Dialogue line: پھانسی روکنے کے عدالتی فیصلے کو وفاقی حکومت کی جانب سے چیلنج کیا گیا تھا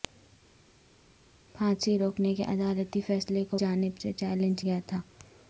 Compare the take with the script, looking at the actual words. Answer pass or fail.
fail